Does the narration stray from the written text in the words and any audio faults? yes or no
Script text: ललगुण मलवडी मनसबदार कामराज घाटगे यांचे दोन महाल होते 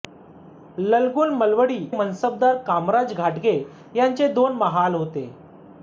no